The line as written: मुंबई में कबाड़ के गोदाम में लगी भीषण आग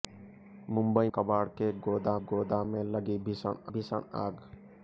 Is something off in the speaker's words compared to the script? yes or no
yes